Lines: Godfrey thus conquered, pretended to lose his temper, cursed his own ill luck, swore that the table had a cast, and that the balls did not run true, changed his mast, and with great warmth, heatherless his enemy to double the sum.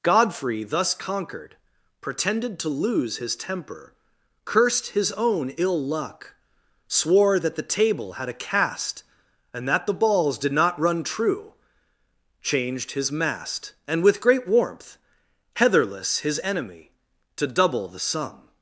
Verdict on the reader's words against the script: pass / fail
pass